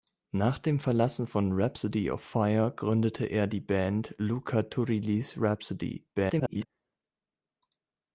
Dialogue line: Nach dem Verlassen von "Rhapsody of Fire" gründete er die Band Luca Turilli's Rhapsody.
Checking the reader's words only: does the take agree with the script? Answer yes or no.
no